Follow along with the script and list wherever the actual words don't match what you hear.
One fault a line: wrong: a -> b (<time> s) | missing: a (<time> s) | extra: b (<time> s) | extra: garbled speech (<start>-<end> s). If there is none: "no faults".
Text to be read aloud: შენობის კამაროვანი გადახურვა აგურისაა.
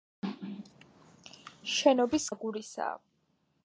missing: კამაროვანი გადახურვა (2.2 s)